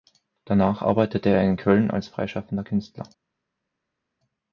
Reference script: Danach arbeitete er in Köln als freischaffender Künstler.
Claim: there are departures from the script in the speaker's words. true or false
false